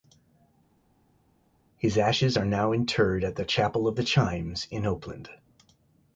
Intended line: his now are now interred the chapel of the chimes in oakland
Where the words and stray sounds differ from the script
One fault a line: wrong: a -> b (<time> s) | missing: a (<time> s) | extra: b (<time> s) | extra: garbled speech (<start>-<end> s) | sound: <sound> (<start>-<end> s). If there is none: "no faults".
wrong: now -> ashes (2.0 s)
extra: at (3.2 s)